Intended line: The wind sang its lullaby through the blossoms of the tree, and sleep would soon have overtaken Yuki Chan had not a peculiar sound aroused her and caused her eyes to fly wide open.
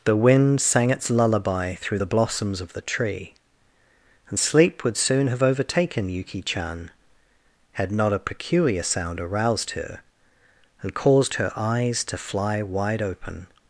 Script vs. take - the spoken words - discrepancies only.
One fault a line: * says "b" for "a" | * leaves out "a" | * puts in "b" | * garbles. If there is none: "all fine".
all fine